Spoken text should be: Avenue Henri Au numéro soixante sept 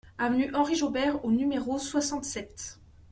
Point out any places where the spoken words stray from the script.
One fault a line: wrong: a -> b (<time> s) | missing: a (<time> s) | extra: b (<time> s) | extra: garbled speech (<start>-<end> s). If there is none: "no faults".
extra: Jaubert (0.7 s)